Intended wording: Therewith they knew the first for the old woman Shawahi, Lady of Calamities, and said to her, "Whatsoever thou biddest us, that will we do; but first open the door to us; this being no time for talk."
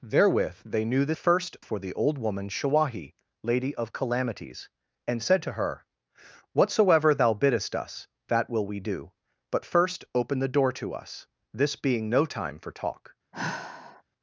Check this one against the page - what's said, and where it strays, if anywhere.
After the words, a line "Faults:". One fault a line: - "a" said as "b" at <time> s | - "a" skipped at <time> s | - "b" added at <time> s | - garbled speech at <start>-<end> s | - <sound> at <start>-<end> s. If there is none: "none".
Therewith they knew the first for the old woman Shawahi, Lady of Calamities, and said to her, "Whatsoever thou biddest us, that will we do; but first open the door to us; this being no time for talk."
Faults:
- sigh at 13.3-14.0 s